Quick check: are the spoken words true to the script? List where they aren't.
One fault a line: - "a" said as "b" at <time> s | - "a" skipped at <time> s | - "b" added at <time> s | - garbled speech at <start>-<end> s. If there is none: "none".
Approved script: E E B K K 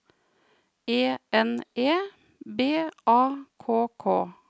- "N" added at 1.3 s
- "A" added at 3.0 s